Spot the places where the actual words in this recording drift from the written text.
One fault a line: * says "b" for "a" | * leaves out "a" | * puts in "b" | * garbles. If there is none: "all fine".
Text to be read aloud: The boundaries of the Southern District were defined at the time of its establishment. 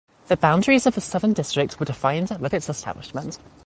* leaves out "time of"